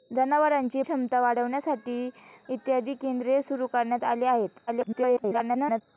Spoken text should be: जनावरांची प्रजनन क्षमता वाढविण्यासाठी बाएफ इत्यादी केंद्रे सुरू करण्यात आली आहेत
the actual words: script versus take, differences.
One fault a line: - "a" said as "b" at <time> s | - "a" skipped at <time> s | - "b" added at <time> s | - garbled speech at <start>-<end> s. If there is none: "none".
- "प्रजनन" skipped at 0.8 s
- "बाएफ" skipped at 2.1 s
- garbled speech at 4.7-5.8 s